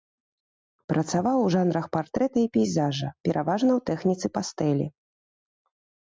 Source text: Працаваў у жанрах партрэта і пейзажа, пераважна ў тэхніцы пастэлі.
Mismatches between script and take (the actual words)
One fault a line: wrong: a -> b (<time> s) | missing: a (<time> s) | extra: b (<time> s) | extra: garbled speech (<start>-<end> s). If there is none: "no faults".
no faults